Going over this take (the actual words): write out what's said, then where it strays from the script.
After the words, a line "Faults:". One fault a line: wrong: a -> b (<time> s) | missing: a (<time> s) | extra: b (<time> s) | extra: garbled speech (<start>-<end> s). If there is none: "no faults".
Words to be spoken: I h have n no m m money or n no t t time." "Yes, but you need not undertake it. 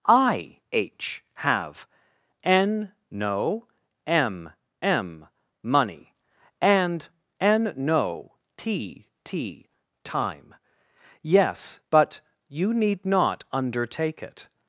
I h have n no m m money and n no t t time." "Yes, but you need not undertake it.
Faults:
wrong: or -> and (6.6 s)